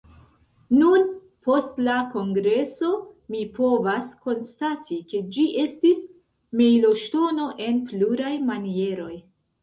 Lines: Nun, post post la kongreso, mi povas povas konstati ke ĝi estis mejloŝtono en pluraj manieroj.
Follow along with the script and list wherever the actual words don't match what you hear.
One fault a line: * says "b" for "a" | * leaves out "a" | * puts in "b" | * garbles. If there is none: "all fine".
* leaves out "post"
* leaves out "povas"